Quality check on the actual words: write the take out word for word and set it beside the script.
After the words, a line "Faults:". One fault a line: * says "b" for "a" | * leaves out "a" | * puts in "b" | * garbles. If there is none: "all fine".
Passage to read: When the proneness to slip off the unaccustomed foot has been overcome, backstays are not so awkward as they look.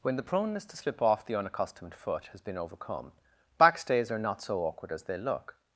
When the proneness to slip off the unaccustomed foot has been overcome, backstays are not so awkward as they look.
Faults:
all fine